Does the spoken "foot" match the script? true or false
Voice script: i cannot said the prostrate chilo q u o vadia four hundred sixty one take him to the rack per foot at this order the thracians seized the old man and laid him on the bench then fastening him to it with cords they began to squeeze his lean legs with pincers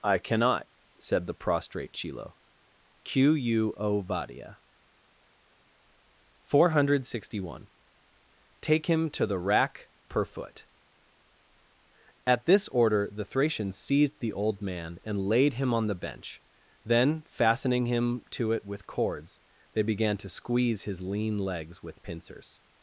true